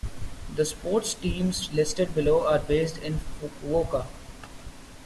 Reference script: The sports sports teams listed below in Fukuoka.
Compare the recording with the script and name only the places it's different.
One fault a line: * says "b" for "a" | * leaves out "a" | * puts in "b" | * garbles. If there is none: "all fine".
* leaves out "sports"
* puts in "are based"